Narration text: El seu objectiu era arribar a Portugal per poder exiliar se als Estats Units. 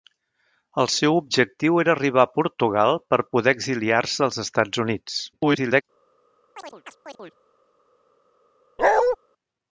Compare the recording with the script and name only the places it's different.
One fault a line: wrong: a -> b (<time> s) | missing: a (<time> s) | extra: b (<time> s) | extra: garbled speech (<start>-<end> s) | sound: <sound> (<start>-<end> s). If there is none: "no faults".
extra: garbled speech (5.3-5.8 s)
sound: chirp (6.6-7.4 s)
sound: bark (8.8-9.2 s)